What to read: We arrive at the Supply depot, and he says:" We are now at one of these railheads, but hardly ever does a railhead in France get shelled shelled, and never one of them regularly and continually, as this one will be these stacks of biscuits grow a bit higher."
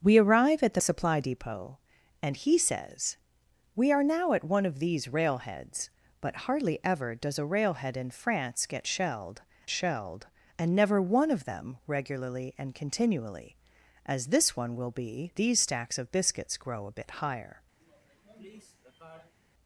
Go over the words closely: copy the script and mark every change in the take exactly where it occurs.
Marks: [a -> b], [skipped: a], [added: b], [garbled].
We arrive at the Supply depot, and he says:" We are now at one of these railheads, but hardly ever does a railhead in France get shelled shelled, and never one of them regularly and continually, as this one will be these stacks of biscuits grow a bit higher."